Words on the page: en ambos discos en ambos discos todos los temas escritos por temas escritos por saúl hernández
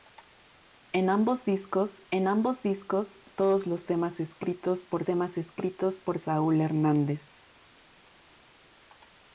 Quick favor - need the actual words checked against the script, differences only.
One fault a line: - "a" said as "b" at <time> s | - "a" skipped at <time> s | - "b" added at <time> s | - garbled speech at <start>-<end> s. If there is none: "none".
none